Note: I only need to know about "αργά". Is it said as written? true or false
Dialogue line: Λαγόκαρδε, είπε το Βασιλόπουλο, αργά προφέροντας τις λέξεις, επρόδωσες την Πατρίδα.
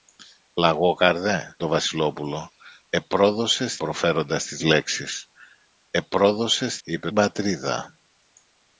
false